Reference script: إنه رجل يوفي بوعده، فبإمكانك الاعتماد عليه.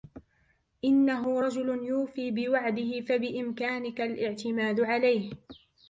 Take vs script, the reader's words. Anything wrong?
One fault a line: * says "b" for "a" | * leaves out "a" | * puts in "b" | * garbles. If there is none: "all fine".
all fine